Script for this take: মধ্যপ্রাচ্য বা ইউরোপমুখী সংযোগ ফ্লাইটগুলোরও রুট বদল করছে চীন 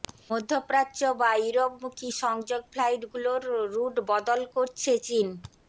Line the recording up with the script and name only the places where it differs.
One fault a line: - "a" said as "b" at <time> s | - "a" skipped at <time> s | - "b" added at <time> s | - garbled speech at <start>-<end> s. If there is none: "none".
none